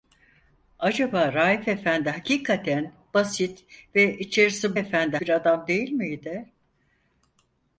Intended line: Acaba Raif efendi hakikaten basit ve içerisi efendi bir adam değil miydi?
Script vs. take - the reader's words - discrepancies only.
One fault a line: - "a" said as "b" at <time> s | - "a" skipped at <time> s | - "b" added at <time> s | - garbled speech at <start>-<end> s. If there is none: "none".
none